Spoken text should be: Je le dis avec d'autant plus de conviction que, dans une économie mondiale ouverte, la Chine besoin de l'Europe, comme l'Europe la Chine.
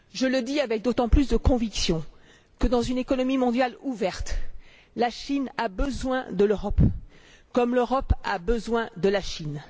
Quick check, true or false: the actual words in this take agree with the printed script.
false